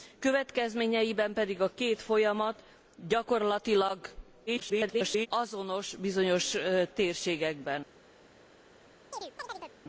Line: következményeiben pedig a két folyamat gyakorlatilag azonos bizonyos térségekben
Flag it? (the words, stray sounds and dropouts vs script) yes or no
yes